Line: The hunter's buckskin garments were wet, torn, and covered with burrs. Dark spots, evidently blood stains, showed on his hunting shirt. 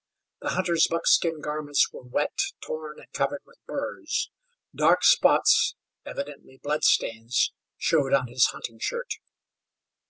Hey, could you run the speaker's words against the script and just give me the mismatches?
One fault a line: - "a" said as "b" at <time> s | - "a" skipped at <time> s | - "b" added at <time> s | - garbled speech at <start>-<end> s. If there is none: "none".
none